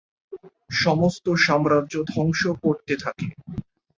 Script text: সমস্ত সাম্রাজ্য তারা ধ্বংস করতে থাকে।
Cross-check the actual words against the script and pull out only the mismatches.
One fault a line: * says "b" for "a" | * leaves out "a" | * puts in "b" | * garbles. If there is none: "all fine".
* leaves out "তারা"